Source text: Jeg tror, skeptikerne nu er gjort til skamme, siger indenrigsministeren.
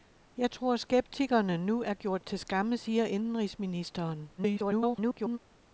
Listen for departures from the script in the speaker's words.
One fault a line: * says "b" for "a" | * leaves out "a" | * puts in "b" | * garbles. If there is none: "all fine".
* garbles